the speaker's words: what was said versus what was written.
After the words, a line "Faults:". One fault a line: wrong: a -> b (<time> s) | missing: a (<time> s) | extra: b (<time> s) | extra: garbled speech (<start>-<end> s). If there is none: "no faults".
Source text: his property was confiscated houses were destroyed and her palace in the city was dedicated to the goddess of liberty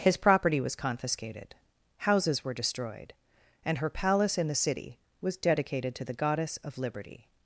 his property was confiscated houses were destroyed and her palace in the city was dedicated to the goddess of liberty
Faults:
no faults